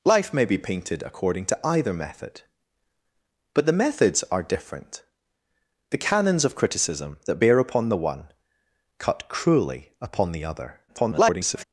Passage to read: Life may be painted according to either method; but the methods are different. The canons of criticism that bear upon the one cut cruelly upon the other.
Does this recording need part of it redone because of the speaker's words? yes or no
yes